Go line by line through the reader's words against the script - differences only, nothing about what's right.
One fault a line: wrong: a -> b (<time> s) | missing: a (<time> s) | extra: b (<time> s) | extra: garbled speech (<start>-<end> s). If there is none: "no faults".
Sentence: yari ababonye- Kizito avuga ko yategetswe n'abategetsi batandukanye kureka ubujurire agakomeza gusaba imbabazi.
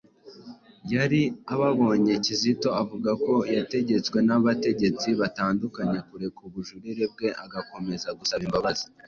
extra: bwe (7.1 s)